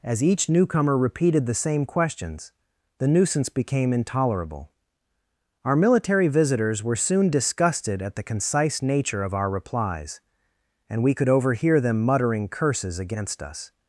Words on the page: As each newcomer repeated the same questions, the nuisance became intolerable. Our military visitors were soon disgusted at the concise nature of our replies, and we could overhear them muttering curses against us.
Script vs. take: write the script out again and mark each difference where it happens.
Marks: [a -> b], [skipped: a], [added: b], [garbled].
As each newcomer repeated the same questions, the nuisance became intolerable. Our military visitors were soon disgusted at the concise nature of our replies, and we could overhear them muttering curses against us.